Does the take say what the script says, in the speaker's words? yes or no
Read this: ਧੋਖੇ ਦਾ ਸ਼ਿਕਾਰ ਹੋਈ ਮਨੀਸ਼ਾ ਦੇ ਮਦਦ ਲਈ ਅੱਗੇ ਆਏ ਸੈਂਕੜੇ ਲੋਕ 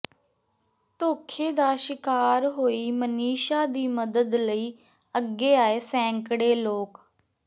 no